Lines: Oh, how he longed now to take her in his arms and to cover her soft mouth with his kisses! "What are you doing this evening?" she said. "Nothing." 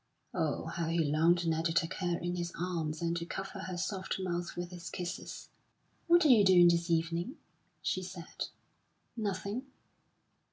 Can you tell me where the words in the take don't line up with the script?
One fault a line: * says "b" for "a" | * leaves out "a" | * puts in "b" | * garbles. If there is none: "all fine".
all fine